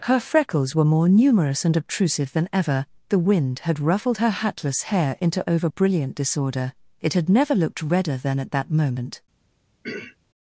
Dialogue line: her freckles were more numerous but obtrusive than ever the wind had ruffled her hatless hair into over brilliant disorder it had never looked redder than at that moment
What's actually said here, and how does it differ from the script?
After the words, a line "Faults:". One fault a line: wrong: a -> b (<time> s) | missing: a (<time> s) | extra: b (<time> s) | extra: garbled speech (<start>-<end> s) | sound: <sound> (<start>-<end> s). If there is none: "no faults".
her freckles were more numerous and obtrusive than ever the wind had ruffled her hatless hair into over brilliant disorder it had never looked redder than at that moment
Faults:
wrong: but -> and (1.6 s)
sound: throat clearing (9.8-10.2 s)